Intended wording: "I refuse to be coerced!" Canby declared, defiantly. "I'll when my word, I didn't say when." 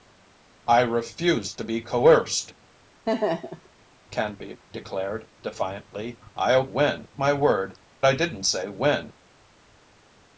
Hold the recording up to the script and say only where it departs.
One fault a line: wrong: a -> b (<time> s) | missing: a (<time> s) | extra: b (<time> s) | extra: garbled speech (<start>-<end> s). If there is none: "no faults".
no faults